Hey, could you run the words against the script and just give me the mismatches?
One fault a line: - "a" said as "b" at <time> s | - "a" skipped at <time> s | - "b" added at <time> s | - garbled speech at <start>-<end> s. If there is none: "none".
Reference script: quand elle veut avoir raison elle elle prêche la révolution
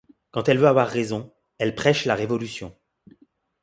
- "elle" skipped at 1.8 s